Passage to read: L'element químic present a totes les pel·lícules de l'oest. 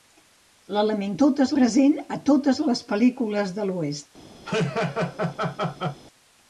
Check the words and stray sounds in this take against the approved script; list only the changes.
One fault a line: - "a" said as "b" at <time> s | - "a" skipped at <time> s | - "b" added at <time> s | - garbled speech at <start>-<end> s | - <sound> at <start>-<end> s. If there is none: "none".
- "químic" said as "totes" at 1.2 s
- laugh at 4.5-6.0 s